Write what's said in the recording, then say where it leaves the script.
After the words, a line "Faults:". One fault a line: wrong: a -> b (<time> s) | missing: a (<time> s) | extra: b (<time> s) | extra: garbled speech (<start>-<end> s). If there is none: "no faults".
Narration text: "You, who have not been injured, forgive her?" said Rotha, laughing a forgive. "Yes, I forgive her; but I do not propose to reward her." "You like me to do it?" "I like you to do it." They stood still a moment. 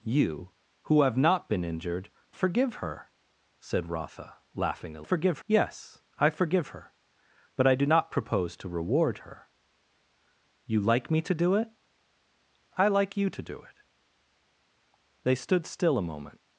"You, who have not been injured, forgive her?" said Rotha, laughing a forgive. "Yes, I forgive her; but I do not propose to reward her." "You like me to do it?" "I like you to do it." They stood still a moment.
Faults:
no faults